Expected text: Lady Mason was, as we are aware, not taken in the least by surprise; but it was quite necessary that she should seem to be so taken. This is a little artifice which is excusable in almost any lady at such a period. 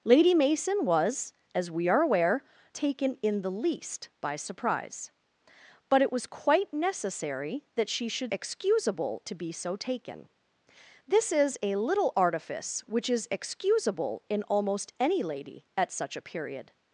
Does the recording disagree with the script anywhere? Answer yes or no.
yes